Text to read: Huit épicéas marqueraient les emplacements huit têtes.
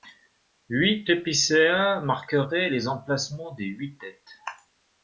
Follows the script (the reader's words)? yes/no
no